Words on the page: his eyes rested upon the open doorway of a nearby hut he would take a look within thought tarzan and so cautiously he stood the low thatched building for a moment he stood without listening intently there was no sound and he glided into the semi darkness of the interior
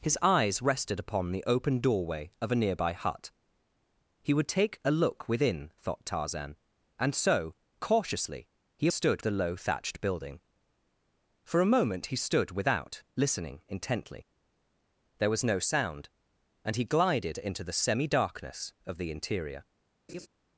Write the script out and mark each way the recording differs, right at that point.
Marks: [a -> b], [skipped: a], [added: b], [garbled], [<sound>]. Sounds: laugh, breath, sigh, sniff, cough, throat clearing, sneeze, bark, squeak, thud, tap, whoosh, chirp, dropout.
his eyes rested upon the open doorway of a nearby hut he would take a look within thought tarzan and so cautiously he stood the low thatched building for a moment he stood without listening intently there was no sound and he glided into the semi darkness of the interior [laugh]